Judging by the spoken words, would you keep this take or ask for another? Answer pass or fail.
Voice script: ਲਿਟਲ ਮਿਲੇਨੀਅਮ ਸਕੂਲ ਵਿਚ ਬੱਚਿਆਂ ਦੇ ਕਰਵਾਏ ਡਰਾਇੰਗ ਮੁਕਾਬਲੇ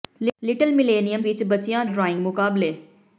fail